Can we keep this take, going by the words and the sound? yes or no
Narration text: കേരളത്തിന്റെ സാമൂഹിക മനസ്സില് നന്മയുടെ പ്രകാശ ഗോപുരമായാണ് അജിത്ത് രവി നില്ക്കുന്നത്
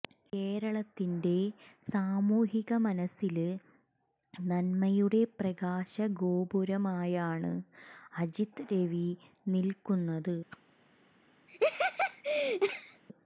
no